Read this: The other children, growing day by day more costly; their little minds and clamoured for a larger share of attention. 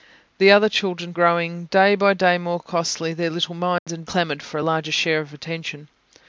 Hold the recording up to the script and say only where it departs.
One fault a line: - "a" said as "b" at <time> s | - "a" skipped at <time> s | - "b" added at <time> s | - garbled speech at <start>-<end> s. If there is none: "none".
none